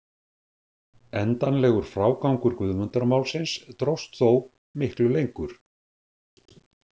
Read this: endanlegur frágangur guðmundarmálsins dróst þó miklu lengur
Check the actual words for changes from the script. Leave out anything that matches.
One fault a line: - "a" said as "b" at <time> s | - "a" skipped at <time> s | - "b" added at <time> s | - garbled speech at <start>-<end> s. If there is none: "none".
none